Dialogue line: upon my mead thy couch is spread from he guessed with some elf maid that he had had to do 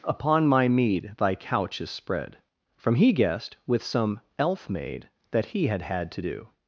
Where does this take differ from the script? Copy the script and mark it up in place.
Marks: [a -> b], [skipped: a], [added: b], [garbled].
upon my mead thy couch is spread from he guessed with some elf maid that he had had to do